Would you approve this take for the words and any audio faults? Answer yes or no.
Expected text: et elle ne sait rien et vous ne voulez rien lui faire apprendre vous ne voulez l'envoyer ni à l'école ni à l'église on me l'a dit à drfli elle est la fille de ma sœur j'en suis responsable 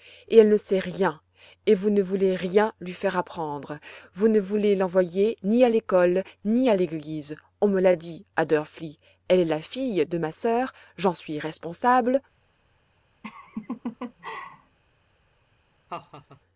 no